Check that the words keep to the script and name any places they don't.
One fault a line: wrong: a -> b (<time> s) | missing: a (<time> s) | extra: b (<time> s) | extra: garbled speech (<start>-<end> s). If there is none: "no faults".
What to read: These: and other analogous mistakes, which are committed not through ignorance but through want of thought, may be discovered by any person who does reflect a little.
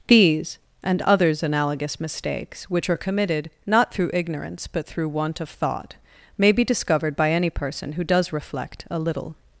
wrong: other -> others (1.0 s)